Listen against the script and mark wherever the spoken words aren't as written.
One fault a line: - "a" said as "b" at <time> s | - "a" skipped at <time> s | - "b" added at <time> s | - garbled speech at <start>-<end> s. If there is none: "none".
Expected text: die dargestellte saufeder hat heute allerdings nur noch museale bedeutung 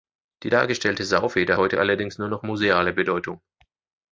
- "hat" skipped at 1.6 s